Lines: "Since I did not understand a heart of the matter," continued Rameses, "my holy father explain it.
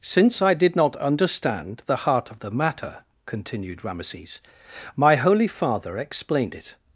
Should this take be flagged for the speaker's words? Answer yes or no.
yes